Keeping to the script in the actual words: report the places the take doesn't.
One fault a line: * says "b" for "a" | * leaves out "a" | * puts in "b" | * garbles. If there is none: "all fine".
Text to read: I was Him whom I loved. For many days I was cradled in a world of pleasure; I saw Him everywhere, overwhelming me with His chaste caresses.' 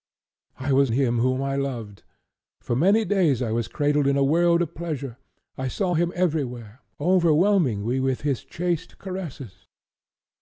all fine